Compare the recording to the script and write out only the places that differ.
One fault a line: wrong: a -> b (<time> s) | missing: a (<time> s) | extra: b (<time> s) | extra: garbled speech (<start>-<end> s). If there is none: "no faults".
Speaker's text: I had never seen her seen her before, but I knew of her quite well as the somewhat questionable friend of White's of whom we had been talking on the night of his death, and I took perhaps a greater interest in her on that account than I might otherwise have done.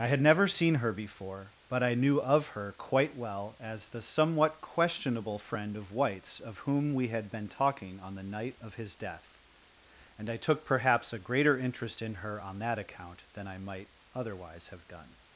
missing: seen her (0.9 s)